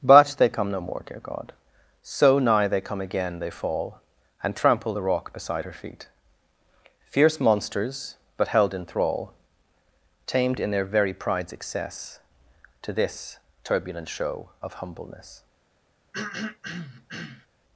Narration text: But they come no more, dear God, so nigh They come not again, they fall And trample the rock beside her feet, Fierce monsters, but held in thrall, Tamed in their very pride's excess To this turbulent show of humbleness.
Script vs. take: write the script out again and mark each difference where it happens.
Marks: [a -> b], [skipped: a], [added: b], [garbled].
But they come no more, dear God, so nigh They come [skipped: not] again, they fall And trample the rock beside her feet, Fierce monsters, but held in thrall, Tamed in their very pride's excess To this turbulent show of humbleness.